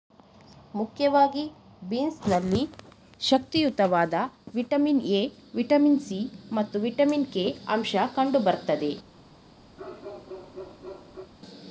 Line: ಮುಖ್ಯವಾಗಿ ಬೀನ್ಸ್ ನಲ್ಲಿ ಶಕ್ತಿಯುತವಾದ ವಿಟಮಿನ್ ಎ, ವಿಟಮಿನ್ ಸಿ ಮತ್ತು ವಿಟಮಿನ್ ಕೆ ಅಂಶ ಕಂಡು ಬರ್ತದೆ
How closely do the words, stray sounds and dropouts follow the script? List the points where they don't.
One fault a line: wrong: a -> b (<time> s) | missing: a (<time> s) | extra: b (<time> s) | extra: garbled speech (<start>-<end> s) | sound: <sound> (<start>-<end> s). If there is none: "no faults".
sound: bark (9.8-11.3 s)